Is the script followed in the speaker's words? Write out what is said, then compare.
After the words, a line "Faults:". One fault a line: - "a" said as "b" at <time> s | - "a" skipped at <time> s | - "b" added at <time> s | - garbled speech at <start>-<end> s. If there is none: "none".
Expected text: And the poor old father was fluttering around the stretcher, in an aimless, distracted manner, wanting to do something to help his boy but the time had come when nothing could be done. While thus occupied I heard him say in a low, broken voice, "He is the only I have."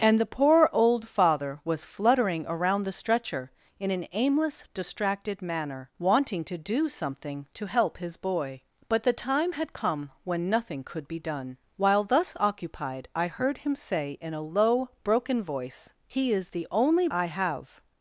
And the poor old father was fluttering around the stretcher, in an aimless, distracted manner, wanting to do something to help his boy but the time had come when nothing could be done. While thus occupied I heard him say in a low, broken voice, "He is the only I have."
Faults:
none